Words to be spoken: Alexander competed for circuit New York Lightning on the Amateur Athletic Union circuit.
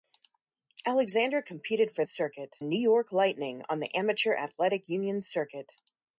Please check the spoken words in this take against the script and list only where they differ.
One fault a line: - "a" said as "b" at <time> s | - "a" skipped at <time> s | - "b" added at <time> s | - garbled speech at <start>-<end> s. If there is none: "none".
none